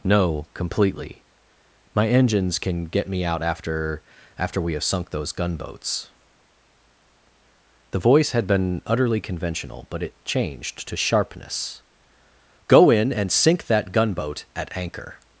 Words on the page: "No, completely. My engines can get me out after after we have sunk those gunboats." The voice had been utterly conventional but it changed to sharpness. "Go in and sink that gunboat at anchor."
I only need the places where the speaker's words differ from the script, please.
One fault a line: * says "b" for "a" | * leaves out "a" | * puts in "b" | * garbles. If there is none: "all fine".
all fine